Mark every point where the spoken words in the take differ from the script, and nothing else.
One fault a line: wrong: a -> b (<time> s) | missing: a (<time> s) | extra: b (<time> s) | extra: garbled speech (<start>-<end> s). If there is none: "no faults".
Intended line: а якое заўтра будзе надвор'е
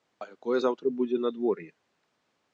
no faults